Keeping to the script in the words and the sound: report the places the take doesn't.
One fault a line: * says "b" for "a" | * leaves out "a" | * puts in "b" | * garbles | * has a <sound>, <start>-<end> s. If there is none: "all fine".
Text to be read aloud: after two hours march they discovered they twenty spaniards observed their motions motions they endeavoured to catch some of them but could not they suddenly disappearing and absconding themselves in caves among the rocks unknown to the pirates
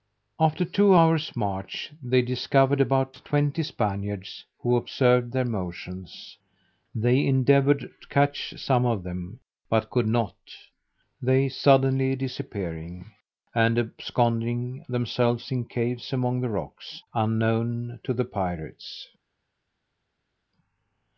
* says "about" for "they"
* puts in "who"
* leaves out "motions"